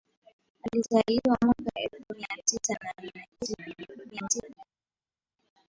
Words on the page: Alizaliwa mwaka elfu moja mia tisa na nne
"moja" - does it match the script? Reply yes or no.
no